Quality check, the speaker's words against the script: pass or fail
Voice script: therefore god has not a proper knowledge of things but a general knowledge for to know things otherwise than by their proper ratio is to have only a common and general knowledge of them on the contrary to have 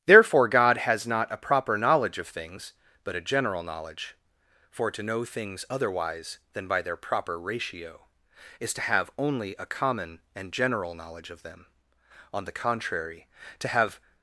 pass